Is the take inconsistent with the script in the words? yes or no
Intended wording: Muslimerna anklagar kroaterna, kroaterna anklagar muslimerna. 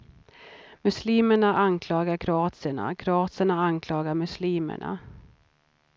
no